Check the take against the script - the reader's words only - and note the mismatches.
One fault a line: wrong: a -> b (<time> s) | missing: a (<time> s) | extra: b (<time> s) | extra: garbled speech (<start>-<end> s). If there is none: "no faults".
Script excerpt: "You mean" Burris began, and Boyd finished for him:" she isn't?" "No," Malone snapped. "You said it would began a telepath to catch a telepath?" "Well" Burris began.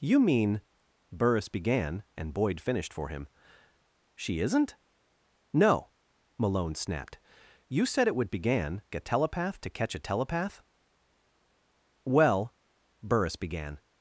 no faults